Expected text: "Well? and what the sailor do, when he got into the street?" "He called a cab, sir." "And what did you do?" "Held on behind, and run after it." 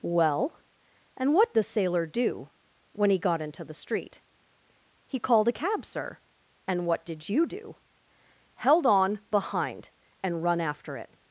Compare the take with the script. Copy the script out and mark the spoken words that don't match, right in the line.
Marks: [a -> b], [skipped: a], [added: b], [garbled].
"Well? and what the sailor do, when he got into the street?" "He called a cab, sir." "And what did you do?" "Held on behind, and run after it."